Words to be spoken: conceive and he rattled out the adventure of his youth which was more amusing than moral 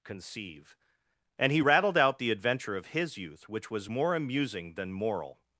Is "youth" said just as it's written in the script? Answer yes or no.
yes